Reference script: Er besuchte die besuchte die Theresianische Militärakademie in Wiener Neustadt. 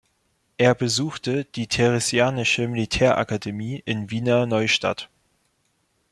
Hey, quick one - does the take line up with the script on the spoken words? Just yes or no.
no